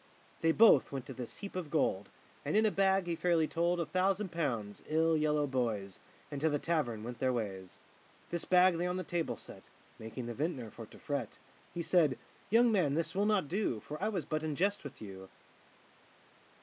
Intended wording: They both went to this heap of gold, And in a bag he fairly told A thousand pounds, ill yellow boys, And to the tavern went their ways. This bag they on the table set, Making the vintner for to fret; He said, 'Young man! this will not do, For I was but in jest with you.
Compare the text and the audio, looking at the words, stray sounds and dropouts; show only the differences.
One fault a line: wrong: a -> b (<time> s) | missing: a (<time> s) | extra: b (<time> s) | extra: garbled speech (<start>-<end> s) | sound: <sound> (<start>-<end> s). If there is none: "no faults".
no faults